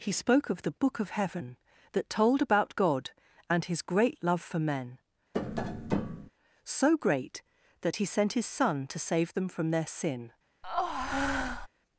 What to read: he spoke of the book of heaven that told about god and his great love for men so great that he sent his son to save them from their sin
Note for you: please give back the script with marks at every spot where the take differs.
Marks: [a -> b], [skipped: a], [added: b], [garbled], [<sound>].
he spoke of the book of heaven that told about god and his great love for men [tap] so great that he sent his son to save them from their sin [breath]